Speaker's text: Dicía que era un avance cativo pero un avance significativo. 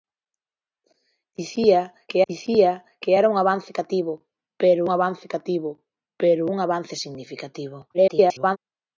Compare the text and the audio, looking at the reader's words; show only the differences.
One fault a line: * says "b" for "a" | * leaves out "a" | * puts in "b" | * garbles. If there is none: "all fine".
* puts in "dicía que"
* puts in "avance cativo pero"
* garbles